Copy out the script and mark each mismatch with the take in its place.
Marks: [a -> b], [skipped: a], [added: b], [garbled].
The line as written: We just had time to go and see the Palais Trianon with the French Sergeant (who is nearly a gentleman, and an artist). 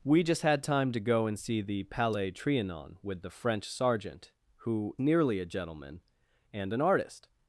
We just had time to go and see the Palais Trianon with the French Sergeant (who [skipped: is] nearly a gentleman, and an artist).